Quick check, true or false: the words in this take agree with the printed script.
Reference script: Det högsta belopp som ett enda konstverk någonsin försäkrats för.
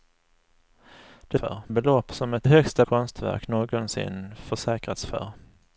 false